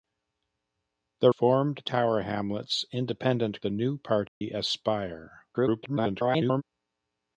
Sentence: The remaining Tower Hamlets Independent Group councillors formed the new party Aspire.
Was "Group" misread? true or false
true